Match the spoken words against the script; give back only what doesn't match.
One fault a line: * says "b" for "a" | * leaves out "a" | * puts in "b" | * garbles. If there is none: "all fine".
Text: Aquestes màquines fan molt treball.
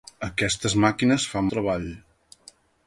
* leaves out "molt"